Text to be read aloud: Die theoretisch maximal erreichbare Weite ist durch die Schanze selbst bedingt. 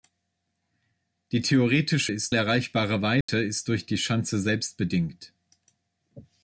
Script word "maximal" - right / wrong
wrong